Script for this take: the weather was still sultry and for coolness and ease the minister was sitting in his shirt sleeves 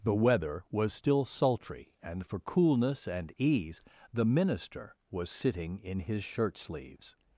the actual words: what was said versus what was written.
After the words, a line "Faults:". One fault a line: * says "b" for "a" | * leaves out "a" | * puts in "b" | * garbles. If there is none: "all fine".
the weather was still sultry and for coolness and ease the minister was sitting in his shirt sleeves
Faults:
all fine